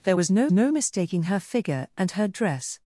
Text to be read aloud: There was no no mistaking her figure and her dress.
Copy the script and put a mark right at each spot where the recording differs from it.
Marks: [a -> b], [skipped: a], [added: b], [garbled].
There was no no mistaking her figure and her dress.